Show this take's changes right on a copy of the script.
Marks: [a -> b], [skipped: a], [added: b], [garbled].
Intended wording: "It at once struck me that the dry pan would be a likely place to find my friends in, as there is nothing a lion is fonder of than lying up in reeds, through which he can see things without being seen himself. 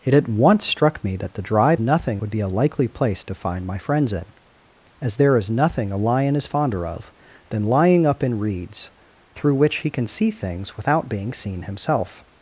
"It at once struck me that the dry [pan -> nothing] would be a likely place to find my friends in, as there is nothing a lion is fonder of than lying up in reeds, through which he can see things without being seen himself.